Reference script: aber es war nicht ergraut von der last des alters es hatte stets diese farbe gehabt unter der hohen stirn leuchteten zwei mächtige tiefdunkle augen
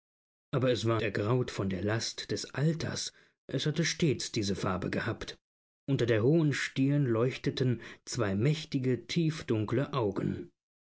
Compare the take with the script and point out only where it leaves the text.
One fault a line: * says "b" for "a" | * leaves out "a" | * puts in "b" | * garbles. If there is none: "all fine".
* leaves out "nicht"